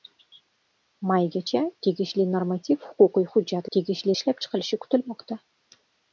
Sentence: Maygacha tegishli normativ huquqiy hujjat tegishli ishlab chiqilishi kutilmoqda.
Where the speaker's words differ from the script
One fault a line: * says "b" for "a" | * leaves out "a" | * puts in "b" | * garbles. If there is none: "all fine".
all fine